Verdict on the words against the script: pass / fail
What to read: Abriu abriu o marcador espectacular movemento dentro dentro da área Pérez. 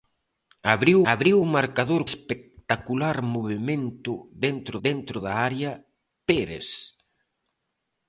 pass